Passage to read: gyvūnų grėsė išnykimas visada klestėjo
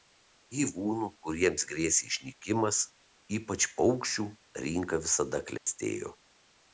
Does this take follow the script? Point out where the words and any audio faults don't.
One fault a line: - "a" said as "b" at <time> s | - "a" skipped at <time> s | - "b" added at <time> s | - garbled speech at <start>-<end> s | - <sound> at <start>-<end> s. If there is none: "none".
- "kuriems" added at 1.2 s
- "ypač paukščių rinka" added at 3.4 s
- dropout at 5.6-5.7 s